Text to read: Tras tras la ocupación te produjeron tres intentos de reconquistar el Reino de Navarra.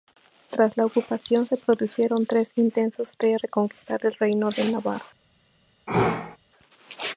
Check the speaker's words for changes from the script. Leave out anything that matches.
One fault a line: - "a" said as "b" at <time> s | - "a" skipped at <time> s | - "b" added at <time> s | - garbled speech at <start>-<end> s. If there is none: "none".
- "tras" skipped at 0.8 s
- "te" said as "se" at 1.4 s